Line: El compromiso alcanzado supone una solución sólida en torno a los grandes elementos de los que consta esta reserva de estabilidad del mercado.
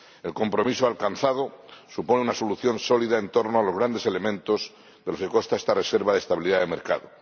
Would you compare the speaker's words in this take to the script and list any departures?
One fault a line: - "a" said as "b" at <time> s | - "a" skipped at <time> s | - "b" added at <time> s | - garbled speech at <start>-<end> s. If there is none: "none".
none